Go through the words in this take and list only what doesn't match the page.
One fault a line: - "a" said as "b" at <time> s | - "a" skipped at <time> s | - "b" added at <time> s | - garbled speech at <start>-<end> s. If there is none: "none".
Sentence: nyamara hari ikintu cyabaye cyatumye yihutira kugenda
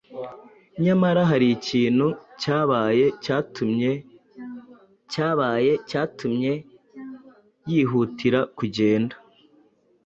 - "cyabaye cyatumye" added at 5.1 s